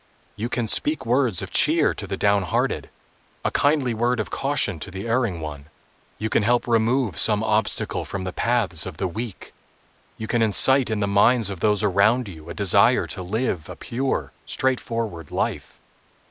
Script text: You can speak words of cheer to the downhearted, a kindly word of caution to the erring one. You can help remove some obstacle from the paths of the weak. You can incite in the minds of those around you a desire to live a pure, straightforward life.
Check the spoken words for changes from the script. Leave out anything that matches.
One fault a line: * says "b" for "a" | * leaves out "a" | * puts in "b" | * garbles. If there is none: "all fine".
all fine